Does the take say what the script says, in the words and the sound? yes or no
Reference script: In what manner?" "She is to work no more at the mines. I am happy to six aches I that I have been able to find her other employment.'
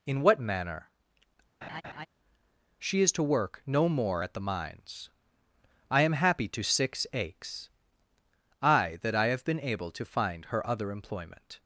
no